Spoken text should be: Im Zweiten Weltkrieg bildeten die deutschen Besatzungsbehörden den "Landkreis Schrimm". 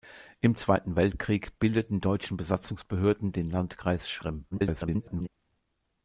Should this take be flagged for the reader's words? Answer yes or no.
yes